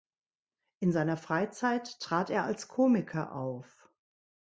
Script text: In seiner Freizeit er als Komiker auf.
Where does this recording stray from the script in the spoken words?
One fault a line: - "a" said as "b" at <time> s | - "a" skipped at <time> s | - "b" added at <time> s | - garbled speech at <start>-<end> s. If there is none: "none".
- "trat" added at 2.0 s